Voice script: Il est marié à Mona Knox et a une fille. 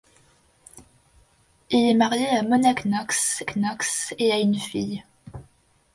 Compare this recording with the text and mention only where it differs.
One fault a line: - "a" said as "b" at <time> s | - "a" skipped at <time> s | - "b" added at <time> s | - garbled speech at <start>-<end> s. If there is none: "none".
- "Knox" added at 3.4 s